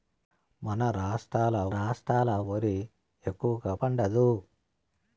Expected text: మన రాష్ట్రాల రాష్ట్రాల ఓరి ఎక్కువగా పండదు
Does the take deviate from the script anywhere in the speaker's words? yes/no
no